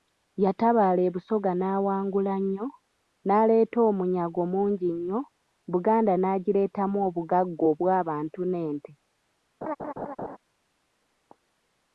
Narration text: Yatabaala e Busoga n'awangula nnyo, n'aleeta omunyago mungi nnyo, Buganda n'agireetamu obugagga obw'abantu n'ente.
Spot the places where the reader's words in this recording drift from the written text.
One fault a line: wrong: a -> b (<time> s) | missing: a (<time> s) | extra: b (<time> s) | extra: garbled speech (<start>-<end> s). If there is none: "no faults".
no faults